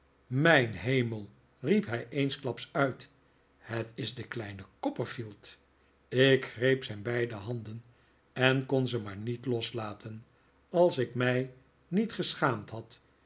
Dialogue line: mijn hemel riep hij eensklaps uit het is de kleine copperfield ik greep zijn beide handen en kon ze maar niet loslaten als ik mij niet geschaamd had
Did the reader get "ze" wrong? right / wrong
right